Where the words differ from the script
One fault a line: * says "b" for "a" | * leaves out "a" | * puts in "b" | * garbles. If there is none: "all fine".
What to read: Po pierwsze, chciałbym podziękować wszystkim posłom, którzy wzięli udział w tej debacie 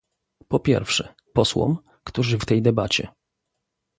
* leaves out "chciałbym podziękować wszystkim"
* leaves out "wzięli udział"